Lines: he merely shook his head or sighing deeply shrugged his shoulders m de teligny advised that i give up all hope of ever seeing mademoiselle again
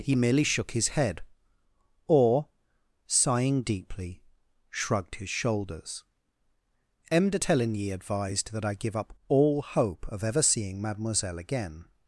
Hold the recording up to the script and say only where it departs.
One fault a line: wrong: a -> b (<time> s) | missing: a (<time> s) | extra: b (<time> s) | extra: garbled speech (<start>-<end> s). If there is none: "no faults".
no faults